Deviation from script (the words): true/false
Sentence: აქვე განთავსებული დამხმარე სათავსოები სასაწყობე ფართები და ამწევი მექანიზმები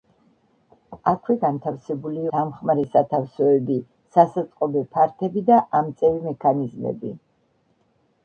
false